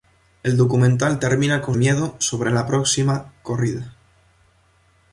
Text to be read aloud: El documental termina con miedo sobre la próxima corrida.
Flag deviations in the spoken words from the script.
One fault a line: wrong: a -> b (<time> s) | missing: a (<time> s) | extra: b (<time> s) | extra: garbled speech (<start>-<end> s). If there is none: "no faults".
no faults